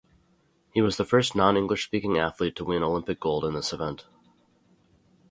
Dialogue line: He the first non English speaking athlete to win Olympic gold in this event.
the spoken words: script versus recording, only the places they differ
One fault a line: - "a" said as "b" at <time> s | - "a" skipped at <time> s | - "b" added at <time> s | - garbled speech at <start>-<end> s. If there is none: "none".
- "was" added at 0.8 s